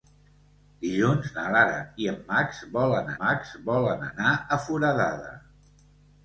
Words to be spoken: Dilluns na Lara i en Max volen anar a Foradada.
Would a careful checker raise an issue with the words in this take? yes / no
yes